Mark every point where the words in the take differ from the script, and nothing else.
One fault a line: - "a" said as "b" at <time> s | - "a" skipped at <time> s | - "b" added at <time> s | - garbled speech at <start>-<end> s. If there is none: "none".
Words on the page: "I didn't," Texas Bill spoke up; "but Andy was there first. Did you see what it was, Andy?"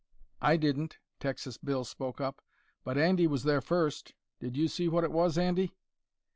none